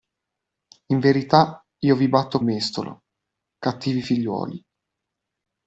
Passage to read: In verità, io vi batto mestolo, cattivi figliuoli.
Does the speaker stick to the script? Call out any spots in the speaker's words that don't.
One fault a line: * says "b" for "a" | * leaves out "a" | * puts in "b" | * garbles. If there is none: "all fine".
all fine